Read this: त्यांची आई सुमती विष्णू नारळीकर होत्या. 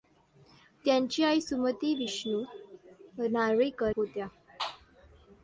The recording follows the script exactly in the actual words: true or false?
true